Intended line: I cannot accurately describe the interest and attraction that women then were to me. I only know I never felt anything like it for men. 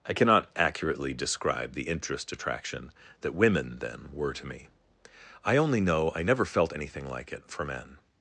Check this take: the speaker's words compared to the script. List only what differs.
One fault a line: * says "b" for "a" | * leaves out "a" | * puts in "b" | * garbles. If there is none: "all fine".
* leaves out "and"